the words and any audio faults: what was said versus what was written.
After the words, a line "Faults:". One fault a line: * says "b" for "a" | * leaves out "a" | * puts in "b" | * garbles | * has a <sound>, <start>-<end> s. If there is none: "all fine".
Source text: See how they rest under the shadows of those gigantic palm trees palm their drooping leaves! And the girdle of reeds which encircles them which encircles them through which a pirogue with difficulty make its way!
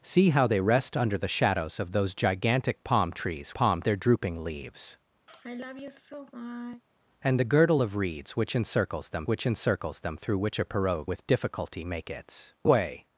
See how they rest under the shadows of those gigantic palm trees palm their drooping leaves! And the girdle of reeds which encircles them which encircles them through which a pirogue with difficulty make its way!
Faults:
* has a sigh, 5.3-6.8 s